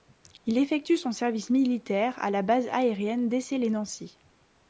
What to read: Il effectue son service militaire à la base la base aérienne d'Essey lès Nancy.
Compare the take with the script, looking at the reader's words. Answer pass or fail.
fail